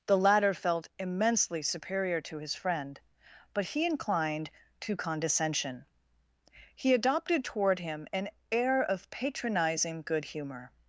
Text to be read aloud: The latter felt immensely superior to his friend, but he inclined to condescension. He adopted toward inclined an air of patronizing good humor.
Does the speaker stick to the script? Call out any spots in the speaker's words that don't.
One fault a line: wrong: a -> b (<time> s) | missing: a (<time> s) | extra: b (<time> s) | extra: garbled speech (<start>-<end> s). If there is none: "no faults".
wrong: inclined -> him (7.8 s)